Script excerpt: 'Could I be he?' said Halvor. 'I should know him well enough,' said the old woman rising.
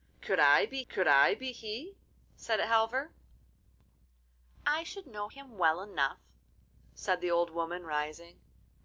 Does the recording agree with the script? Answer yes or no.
no